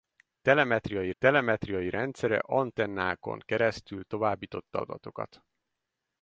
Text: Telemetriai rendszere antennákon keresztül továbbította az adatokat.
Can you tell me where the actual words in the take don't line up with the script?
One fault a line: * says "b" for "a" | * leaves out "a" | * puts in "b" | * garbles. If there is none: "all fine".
* puts in "telemetriai"
* leaves out "az"